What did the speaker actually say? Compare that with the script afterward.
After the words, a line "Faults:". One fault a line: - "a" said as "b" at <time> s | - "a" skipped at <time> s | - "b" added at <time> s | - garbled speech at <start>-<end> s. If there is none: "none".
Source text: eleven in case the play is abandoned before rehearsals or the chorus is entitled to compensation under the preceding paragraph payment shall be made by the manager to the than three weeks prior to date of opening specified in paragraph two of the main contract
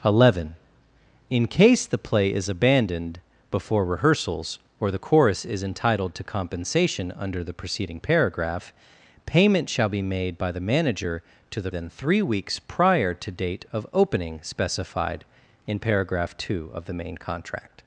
eleven in case the play is abandoned before rehearsals or the chorus is entitled to compensation under the preceding paragraph payment shall be made by the manager to the than three weeks prior to date of opening specified in paragraph two of the main contract
Faults:
none